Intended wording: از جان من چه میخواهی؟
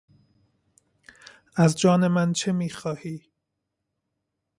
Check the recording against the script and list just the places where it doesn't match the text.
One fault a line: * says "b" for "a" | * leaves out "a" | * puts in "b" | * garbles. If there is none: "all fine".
all fine